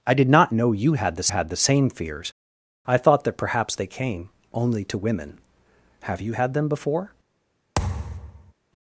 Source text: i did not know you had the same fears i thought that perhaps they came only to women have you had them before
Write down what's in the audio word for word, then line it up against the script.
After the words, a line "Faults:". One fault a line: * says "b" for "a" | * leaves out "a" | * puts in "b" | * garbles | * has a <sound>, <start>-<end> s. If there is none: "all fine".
i did not know you had the had the same fears i thought that perhaps they came only to women have you had them before
Faults:
* puts in "had the"
* has a thud, 7.8-8.5 s